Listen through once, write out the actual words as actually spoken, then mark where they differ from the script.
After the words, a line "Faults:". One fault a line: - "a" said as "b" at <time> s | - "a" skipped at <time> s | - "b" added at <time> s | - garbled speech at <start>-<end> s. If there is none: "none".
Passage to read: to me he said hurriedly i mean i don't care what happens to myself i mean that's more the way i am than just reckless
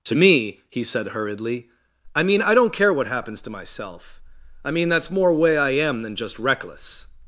to me he said hurriedly i mean i don't care what happens to myself i mean that's more way i am than just reckless
Faults:
- "the" skipped at 5.3 s